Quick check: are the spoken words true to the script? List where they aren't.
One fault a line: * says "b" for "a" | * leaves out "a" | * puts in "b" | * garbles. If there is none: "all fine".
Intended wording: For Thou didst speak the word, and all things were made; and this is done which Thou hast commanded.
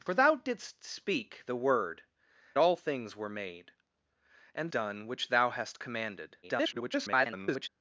* leaves out "and"
* leaves out "this is"
* garbles